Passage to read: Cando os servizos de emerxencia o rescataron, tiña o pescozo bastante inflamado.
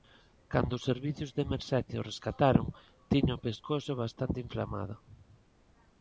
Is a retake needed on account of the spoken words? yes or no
no